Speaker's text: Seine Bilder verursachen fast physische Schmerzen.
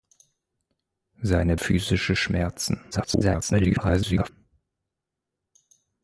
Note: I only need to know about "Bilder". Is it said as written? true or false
false